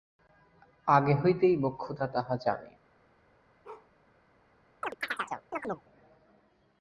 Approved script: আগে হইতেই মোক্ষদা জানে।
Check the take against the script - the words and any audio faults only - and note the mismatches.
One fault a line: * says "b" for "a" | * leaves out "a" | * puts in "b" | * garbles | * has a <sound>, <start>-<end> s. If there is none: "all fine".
* puts in "তাহা"
* has a bark, 3.6-3.9 s
* has a chirp, 4.8-5.9 s